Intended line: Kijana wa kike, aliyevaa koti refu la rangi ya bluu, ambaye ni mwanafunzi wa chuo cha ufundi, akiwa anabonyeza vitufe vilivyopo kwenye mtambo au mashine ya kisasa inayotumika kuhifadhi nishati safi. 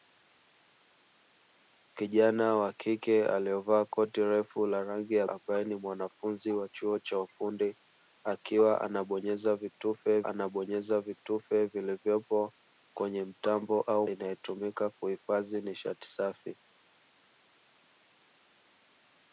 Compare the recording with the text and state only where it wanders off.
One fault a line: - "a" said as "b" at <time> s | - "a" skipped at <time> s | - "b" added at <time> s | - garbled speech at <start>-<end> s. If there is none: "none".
- "bluu" skipped at 5.3 s
- "anabonyeza vitufe" added at 10.3 s
- "mashine ya kisasa" skipped at 14.1 s